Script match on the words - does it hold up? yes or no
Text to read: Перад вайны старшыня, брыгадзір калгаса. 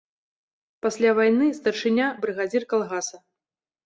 no